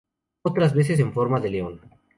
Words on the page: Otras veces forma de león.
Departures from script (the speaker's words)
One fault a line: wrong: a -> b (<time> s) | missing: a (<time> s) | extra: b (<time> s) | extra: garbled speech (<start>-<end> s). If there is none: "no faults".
extra: en (1.0 s)